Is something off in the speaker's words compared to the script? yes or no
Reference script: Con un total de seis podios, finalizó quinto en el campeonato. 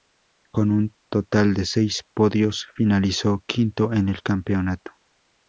no